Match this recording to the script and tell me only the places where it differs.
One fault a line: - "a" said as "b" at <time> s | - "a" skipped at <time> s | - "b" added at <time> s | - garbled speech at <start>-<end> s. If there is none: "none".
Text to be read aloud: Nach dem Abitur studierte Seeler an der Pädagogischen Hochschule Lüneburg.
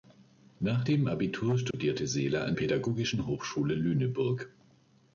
- "der" skipped at 2.5 s